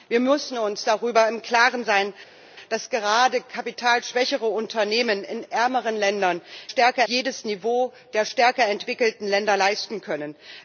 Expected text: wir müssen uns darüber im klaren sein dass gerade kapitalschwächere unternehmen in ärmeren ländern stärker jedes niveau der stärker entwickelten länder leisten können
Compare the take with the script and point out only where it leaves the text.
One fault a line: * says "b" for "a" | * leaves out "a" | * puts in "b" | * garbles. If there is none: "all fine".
all fine